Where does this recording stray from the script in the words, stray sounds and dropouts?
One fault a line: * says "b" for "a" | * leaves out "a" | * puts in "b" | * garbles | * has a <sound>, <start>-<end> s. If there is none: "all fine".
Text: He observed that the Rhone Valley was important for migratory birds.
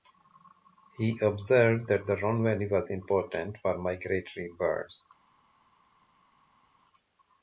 all fine